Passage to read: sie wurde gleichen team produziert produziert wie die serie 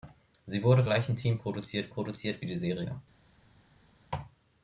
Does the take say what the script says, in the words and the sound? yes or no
yes